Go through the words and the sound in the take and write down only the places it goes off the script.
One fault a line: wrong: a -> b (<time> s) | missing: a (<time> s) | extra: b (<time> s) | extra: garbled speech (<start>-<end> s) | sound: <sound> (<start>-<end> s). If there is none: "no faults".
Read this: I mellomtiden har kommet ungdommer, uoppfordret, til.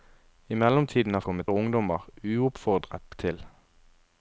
no faults